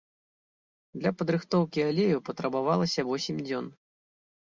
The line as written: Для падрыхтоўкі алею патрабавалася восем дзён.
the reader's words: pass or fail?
pass